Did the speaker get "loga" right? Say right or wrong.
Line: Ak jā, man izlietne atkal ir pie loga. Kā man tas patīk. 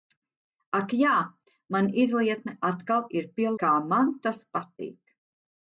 wrong